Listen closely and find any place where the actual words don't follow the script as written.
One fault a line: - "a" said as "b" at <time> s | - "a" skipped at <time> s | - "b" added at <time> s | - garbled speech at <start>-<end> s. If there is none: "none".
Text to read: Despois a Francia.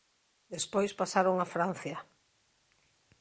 - "pasaron" added at 1.0 s